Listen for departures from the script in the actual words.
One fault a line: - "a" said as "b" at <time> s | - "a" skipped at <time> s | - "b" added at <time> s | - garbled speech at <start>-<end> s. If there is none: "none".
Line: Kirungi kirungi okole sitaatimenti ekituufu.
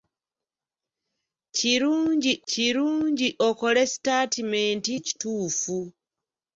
none